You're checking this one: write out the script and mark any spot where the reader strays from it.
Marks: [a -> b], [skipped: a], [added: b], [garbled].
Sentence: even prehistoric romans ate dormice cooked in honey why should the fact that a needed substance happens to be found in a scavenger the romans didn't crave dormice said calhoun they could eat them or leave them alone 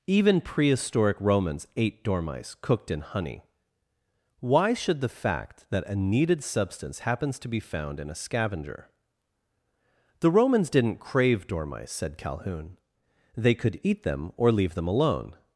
even prehistoric romans ate dormice cooked in honey why should the fact that a needed substance happens to be found in a scavenger the romans didn't crave dormice said calhoun they could eat them or leave them alone